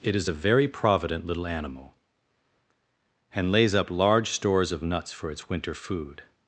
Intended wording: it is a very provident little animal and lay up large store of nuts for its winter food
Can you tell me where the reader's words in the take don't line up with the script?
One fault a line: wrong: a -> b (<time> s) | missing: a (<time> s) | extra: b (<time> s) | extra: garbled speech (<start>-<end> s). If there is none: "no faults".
wrong: lay -> lays (3.5 s)
wrong: store -> stores (4.3 s)